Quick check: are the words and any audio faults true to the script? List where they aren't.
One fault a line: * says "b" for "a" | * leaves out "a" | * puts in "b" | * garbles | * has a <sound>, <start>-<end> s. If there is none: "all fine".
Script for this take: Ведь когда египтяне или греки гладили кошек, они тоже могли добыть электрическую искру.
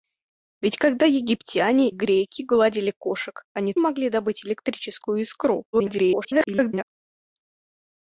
* leaves out "или"
* leaves out "тоже"
* garbles